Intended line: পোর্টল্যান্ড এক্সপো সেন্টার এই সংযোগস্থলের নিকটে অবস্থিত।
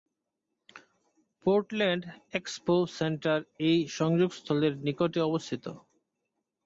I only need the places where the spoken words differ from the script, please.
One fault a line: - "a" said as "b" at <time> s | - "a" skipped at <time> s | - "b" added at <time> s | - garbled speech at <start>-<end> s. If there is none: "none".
none